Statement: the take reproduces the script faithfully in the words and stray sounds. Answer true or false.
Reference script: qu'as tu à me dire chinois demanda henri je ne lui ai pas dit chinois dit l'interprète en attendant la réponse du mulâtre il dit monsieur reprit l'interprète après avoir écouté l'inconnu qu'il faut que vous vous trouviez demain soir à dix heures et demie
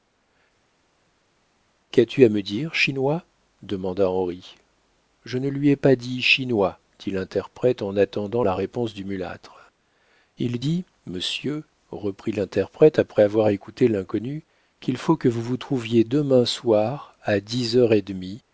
true